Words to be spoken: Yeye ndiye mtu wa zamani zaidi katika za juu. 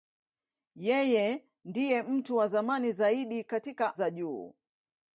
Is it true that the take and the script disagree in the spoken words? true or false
false